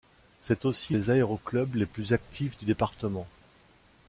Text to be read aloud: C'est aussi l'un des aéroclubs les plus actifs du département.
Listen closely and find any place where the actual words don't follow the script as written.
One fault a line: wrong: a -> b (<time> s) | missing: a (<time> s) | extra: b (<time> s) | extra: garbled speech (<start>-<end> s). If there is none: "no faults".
missing: l'un (0.9 s)